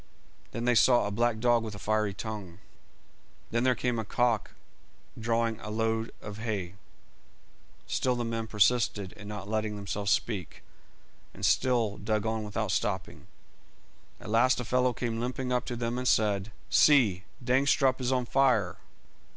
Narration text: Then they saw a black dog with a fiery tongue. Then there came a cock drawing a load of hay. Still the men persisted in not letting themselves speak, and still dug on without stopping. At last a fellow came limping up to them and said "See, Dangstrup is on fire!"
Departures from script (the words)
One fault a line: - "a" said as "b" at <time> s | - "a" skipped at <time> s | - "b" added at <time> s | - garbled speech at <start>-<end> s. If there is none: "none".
none